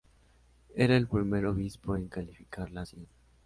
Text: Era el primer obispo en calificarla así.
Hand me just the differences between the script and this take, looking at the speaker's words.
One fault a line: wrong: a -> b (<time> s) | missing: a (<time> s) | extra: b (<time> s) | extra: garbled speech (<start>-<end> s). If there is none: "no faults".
no faults